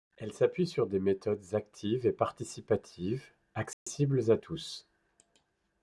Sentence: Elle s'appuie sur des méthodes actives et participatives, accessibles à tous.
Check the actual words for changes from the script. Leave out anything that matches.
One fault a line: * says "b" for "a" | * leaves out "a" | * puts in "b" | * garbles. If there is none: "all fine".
all fine